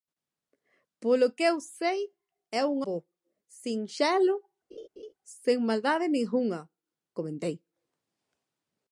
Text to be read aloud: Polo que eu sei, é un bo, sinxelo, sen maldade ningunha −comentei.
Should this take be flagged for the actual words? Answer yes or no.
no